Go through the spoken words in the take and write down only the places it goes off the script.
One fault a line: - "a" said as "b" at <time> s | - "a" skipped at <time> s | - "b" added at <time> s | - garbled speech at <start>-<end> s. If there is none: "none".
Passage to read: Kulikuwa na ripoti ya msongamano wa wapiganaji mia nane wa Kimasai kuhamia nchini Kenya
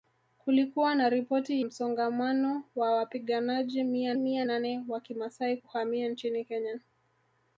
- "ya" skipped at 1.6 s
- "mia" added at 4.1 s